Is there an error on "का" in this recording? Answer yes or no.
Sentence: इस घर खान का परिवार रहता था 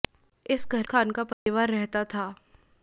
no